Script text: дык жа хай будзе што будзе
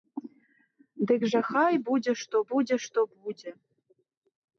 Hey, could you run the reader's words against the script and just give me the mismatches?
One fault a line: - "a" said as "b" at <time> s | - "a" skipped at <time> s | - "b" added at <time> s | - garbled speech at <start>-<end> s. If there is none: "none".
- "што будзе" added at 2.8 s